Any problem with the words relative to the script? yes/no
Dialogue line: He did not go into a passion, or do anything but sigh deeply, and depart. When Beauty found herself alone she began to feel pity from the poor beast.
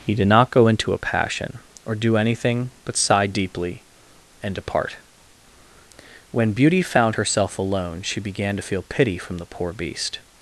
no